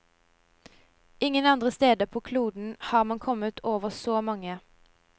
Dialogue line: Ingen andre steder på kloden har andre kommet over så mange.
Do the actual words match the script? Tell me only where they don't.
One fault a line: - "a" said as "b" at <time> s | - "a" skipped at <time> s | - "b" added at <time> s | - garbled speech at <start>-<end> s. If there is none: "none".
- "andre" said as "man" at 3.0 s